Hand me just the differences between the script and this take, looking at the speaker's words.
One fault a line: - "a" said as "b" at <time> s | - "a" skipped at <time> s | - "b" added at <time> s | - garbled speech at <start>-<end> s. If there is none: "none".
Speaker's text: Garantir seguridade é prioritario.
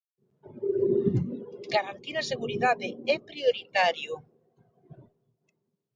- "a" added at 2.2 s